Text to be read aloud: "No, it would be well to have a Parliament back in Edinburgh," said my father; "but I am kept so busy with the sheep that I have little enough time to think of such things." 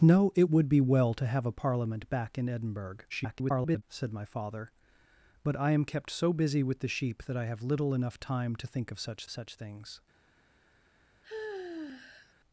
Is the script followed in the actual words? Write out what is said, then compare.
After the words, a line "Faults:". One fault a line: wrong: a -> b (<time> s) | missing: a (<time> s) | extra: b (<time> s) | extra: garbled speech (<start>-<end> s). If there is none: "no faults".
"No, it would be well to have a Parliament back in Edinburgh," [garbled] said my father; "but I am kept so busy with the sheep that I have little enough time to think of such such things."
Faults:
extra: garbled speech (3.1-3.8 s)
extra: such (9.3 s)